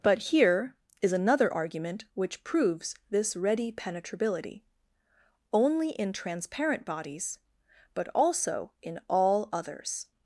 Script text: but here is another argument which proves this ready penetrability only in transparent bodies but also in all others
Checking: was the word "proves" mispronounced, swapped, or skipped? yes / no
no